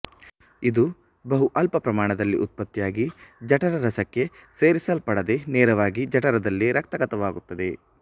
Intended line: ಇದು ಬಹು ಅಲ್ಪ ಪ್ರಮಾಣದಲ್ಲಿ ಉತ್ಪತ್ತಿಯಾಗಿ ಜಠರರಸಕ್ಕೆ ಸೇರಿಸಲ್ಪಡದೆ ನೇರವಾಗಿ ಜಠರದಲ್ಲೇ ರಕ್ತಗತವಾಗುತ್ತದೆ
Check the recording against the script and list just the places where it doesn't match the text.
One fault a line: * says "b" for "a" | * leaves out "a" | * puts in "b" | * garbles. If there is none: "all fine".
all fine